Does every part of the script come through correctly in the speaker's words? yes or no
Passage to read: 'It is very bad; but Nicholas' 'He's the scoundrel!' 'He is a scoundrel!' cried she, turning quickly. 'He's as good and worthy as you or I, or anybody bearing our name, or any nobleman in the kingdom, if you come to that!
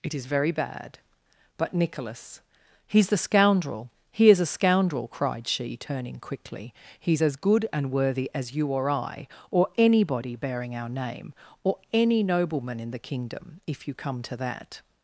yes